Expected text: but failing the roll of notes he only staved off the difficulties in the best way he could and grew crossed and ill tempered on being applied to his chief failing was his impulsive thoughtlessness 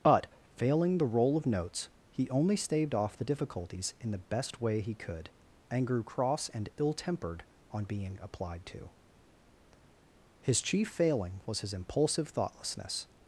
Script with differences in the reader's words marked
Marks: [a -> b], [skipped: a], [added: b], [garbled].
but failing the roll of notes he only staved off the difficulties in the best way he could and grew [crossed -> cross] and ill tempered on being applied to his chief failing was his impulsive thoughtlessness